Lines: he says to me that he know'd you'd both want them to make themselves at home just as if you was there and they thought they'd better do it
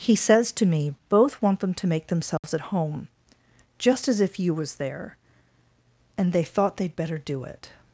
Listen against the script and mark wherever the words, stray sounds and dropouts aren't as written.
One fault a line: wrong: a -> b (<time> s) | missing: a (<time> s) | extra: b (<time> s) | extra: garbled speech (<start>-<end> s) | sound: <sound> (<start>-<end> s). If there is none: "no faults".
missing: that he know'd you'd (0.9 s)
sound: dropout (2.4-2.4 s)